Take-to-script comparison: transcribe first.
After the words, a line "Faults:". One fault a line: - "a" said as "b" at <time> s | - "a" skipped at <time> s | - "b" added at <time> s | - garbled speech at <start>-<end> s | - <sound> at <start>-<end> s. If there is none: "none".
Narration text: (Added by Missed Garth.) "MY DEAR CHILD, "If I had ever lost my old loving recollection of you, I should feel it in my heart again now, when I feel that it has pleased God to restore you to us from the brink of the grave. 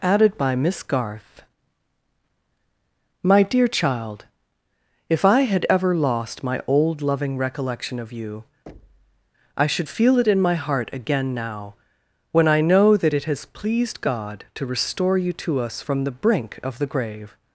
(Added by Miss Garth.) "MY DEAR CHILD, "If I had ever lost my old loving recollection of you, I should feel it in my heart again now, when I know that it has pleased God to restore you to us from the brink of the grave.
Faults:
- "Missed" said as "Miss" at 0.6 s
- thud at 8.7-9.3 s
- "feel" said as "know" at 12.6 s